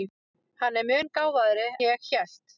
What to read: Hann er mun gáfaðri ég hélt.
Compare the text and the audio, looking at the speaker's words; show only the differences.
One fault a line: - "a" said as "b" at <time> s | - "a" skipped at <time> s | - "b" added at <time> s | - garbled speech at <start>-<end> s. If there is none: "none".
none